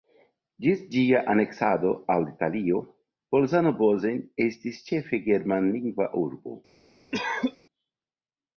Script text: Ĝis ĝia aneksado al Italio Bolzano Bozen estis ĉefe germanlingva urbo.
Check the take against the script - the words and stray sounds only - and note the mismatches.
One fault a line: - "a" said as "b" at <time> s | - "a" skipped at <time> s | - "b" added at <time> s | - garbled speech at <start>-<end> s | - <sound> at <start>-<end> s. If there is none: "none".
- cough at 7.1-7.6 s